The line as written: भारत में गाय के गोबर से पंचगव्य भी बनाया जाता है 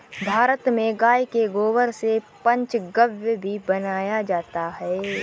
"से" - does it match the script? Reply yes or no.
yes